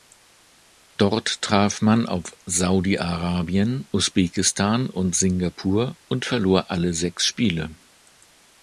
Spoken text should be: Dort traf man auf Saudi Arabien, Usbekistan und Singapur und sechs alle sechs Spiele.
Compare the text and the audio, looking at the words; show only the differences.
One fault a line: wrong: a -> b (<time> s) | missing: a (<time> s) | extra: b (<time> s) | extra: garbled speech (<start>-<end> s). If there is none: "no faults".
wrong: sechs -> verlor (6.2 s)